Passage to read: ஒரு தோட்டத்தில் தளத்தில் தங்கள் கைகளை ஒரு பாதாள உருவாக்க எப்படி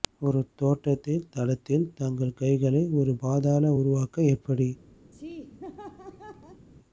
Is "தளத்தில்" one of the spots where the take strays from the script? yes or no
no